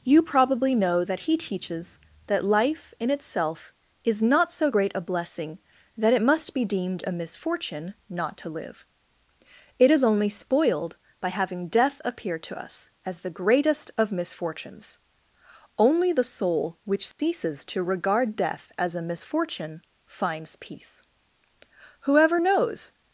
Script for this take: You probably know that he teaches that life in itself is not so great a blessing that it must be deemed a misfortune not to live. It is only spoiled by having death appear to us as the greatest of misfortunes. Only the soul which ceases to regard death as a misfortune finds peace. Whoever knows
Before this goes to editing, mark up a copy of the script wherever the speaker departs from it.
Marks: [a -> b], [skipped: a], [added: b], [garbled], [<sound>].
You probably know that he teaches that life in itself is not so great a blessing that it must be deemed a misfortune not to live. It is only spoiled by having death appear to us as the greatest of misfortunes. Only the soul which ceases [dropout] to regard death as a misfortune finds peace. Whoever knows